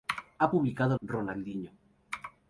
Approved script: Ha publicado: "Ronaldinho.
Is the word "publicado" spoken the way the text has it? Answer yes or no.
yes